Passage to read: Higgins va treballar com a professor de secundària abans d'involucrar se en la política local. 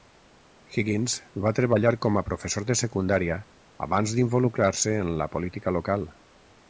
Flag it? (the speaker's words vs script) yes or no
no